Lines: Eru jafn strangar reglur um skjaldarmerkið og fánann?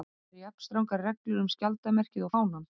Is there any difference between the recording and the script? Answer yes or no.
no